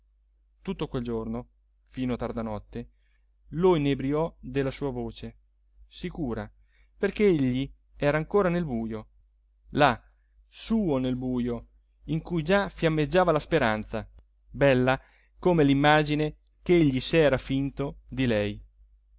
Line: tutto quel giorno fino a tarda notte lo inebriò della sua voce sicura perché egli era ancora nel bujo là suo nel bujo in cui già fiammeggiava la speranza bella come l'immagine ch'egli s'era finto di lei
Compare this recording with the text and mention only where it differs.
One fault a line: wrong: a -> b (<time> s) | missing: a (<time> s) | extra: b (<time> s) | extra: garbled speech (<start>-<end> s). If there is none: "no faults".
no faults